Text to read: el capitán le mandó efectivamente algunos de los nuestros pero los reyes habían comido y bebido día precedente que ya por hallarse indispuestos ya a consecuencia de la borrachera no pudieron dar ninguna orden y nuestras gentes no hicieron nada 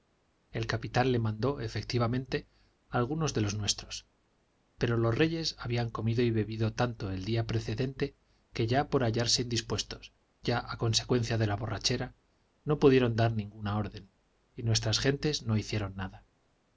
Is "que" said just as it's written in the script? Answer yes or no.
yes